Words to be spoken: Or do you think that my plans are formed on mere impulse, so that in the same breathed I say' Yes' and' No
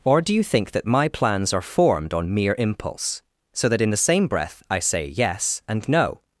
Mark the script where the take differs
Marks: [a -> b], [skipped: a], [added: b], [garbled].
Or do you think that my plans are formed on mere impulse, so that in the same [breathed -> breath] I say' Yes' and' No